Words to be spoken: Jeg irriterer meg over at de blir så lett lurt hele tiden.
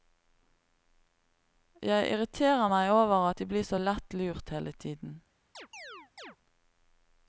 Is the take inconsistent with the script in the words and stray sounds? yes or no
yes